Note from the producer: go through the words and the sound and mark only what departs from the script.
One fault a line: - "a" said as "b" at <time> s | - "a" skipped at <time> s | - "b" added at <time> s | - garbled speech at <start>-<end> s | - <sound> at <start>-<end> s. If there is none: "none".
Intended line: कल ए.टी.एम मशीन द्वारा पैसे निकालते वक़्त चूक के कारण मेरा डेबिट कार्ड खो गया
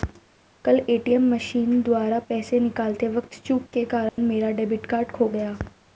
- dropout at 4.1-4.2 s